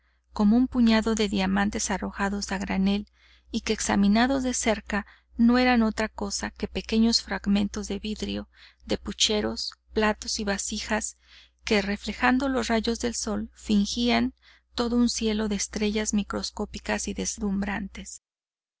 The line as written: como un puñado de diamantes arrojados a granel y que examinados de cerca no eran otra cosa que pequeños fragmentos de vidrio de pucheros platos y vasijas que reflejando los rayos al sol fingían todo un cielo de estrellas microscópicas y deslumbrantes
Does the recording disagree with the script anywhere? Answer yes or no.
yes